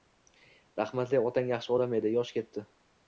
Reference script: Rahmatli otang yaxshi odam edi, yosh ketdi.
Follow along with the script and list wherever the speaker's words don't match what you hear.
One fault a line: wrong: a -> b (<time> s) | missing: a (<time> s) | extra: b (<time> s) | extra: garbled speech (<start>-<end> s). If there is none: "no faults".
no faults